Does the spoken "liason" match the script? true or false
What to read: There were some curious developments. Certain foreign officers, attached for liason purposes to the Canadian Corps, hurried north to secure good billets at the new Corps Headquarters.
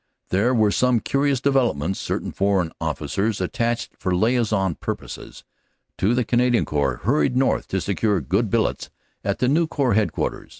true